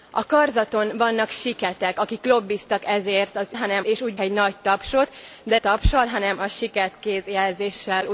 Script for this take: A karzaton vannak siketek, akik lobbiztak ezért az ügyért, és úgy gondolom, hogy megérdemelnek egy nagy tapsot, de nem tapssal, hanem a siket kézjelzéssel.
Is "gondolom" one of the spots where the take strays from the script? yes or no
yes